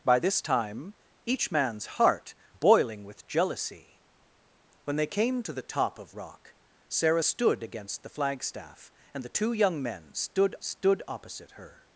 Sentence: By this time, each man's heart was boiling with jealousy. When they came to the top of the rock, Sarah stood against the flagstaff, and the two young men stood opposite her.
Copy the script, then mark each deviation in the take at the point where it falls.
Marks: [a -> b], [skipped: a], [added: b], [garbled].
By this time, each man's heart [skipped: was] boiling with jealousy. When they came to the top of [skipped: the] rock, Sarah stood against the flagstaff, and the two young men stood [added: stood] opposite her.